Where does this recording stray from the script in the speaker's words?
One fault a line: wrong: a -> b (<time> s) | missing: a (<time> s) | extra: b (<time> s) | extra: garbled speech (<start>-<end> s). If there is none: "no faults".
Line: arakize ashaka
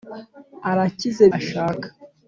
no faults